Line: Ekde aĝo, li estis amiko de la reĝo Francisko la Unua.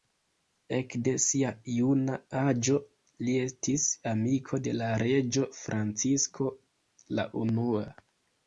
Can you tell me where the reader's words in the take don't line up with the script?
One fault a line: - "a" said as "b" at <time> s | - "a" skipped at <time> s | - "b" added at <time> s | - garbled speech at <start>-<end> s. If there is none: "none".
- "sia juna" added at 1.2 s